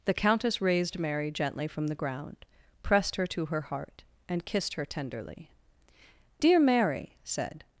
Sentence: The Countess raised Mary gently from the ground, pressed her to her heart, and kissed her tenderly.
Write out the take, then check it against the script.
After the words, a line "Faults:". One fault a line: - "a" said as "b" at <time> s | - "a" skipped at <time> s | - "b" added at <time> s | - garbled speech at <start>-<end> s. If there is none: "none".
The Countess raised Mary gently from the ground, pressed her to her heart, and kissed her tenderly. "Dear Mary," said
Faults:
- "Dear Mary said" added at 6.4 s